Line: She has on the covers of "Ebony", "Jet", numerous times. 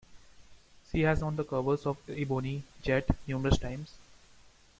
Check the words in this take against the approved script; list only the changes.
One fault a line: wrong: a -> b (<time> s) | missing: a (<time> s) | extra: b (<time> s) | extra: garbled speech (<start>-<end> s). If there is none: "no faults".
no faults